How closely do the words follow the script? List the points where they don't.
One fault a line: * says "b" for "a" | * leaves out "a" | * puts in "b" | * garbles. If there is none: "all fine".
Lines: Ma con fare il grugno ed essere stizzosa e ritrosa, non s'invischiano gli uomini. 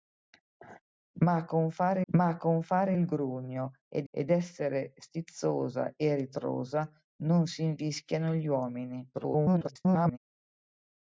* puts in "ma con fare"
* puts in "ed"
* garbles